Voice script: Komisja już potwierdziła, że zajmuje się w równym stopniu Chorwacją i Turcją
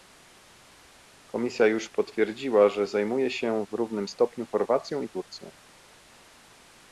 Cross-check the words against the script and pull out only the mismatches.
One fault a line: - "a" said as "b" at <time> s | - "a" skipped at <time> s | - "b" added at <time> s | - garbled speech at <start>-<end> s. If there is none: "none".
none